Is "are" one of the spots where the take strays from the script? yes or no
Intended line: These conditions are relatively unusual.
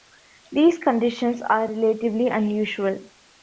no